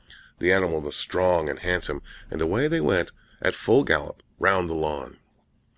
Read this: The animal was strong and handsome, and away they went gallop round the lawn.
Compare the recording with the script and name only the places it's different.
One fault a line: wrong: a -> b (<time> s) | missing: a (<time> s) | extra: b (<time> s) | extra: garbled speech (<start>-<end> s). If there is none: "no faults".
extra: at full (3.4 s)